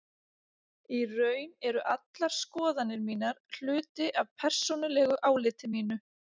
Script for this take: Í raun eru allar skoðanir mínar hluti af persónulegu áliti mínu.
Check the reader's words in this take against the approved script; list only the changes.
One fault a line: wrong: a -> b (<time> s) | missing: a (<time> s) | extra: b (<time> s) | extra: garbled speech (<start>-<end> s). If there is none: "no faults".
no faults